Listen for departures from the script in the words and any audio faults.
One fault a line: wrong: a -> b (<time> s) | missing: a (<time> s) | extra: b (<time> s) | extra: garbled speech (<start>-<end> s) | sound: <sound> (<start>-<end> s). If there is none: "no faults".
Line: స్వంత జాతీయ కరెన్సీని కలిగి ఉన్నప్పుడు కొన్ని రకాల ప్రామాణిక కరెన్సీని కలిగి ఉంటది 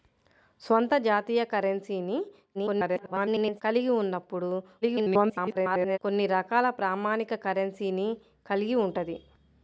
extra: garbled speech (2.5-3.6 s)
extra: garbled speech (4.8-6.0 s)